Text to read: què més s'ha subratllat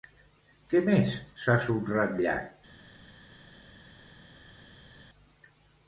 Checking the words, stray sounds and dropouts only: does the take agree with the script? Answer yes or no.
yes